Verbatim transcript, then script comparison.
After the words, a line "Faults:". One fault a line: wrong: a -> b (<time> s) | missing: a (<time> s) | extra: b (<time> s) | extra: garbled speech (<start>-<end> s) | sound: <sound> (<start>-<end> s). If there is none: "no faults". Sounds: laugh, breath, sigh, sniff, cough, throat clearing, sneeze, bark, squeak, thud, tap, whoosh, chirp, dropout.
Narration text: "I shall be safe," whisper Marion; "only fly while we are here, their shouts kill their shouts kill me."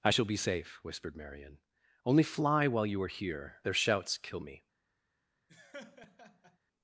"I shall be safe," whispered Marion; "only fly while you are here, their shouts kill me."
Faults:
wrong: whisper -> whispered (0.8 s)
wrong: we -> you (2.9 s)
missing: their shouts kill (4.4 s)
sound: laugh (5.5-6.6 s)